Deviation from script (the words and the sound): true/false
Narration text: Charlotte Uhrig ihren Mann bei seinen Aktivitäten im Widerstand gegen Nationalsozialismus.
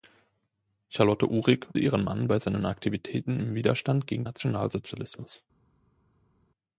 false